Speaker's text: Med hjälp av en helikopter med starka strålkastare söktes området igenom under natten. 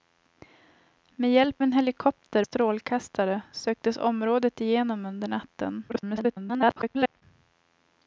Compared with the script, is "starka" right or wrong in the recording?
wrong